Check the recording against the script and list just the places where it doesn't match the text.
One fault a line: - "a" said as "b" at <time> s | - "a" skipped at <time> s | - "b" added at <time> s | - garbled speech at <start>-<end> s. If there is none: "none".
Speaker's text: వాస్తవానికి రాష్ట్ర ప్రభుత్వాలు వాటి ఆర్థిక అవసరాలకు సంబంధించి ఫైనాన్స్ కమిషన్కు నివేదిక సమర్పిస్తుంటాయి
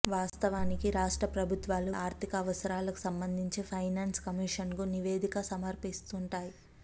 - "వాటి" skipped at 1.9 s